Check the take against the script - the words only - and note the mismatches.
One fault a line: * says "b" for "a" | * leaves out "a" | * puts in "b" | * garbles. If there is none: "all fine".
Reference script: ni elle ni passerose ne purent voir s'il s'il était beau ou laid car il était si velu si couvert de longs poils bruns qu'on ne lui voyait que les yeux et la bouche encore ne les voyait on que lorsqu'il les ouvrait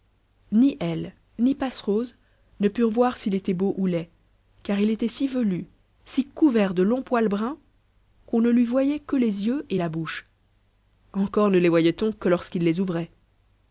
* leaves out "s'il"